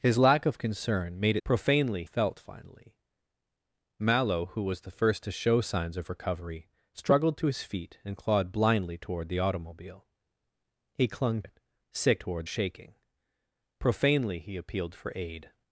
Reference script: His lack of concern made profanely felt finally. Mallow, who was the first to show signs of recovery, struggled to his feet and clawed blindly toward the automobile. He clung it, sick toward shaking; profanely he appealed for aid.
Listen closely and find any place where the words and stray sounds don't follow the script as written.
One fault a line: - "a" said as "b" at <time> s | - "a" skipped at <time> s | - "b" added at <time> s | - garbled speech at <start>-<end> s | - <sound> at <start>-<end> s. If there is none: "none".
none